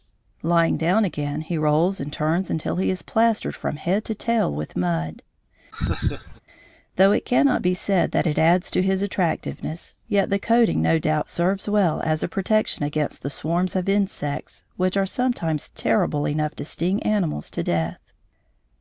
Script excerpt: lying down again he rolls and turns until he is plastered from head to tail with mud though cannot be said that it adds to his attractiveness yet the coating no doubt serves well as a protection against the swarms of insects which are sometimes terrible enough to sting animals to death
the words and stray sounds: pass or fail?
fail